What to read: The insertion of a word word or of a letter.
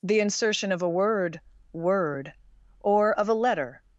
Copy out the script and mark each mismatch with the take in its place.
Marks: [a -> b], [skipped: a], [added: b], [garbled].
The insertion of a word word or of a letter.